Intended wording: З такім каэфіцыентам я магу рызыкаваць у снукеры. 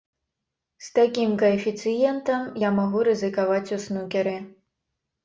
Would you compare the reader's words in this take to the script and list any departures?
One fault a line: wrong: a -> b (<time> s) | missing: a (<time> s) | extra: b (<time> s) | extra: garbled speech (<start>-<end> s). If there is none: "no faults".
no faults